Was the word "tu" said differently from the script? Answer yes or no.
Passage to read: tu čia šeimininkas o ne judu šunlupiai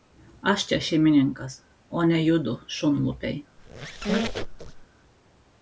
yes